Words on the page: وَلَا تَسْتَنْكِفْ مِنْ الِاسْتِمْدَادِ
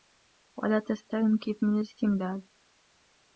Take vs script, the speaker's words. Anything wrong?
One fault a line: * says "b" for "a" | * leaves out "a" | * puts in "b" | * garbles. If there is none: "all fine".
all fine